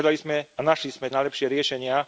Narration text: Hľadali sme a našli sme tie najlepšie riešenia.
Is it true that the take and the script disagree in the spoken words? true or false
true